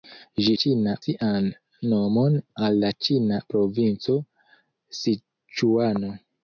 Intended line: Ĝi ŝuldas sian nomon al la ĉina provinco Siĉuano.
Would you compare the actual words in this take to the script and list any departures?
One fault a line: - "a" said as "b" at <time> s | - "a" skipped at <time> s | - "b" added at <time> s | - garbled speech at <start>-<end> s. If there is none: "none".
- "ŝuldas" said as "ĉina" at 0.6 s